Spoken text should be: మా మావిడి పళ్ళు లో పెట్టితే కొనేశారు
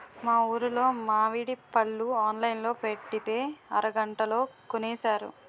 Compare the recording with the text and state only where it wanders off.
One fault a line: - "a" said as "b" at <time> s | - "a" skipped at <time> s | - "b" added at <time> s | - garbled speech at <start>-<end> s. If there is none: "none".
- "ఊరులో" added at 0.5 s
- "ఆన్లైన్" added at 2.2 s
- "అరగంటలో" added at 3.8 s